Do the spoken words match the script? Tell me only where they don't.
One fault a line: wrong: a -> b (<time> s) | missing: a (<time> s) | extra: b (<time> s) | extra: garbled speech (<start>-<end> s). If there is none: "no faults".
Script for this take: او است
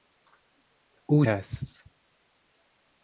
no faults